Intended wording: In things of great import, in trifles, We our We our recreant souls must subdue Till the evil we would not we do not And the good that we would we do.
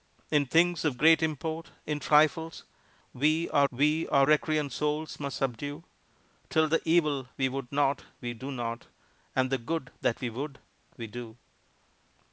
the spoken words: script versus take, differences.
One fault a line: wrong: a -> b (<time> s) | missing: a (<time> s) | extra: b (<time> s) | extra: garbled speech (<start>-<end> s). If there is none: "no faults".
no faults